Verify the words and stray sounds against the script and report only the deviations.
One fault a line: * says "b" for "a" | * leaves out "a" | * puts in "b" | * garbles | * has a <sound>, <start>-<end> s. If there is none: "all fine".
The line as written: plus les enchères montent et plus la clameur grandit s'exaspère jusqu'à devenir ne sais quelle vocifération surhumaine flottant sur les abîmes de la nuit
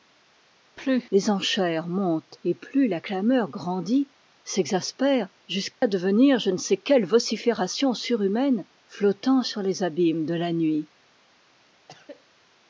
* has a dropout, 5.7-5.8 s
* puts in "je"
* has a cough, 11.9-12.4 s